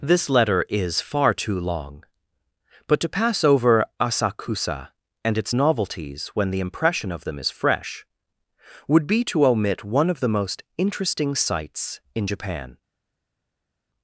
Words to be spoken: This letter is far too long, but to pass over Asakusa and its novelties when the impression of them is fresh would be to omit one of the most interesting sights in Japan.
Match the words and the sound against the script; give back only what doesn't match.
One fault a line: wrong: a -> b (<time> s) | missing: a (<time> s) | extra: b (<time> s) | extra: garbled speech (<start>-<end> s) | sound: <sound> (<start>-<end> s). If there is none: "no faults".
no faults